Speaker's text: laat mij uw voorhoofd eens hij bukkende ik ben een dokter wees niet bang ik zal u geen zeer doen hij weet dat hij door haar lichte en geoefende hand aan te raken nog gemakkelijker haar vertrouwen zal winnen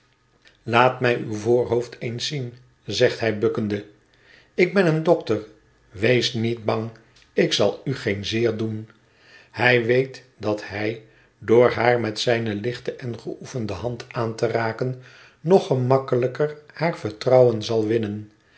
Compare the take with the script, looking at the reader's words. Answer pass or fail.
fail